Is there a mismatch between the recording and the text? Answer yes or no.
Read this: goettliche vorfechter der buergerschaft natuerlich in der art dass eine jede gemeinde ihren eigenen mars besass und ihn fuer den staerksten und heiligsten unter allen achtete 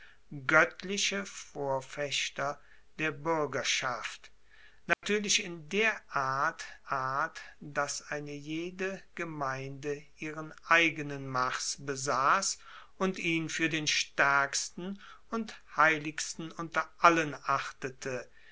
yes